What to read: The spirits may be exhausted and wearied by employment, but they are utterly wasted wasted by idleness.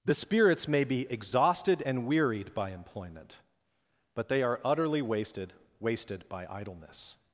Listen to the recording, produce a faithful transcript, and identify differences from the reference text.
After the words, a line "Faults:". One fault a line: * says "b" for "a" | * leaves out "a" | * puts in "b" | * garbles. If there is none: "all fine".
The spirits may be exhausted and wearied by employment, but they are utterly wasted wasted by idleness.
Faults:
all fine